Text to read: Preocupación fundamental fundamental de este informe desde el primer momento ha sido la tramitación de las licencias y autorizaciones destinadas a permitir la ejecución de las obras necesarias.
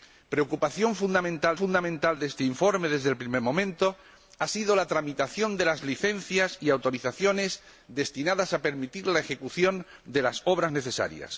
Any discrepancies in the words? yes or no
no